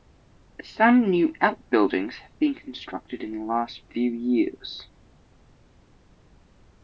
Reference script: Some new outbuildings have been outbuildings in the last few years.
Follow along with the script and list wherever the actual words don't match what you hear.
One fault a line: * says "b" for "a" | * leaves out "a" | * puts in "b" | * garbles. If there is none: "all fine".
* says "constructed" for "outbuildings"